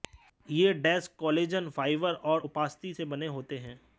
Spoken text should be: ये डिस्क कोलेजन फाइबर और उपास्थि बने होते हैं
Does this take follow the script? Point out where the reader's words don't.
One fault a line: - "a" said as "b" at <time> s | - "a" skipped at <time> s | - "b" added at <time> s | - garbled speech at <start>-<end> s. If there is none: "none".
- "से" added at 2.9 s